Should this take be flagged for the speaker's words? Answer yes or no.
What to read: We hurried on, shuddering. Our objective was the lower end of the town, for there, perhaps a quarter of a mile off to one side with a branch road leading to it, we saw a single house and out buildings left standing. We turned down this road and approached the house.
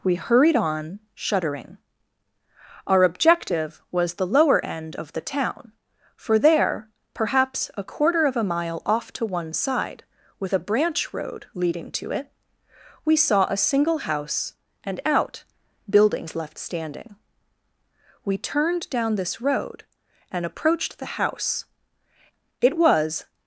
yes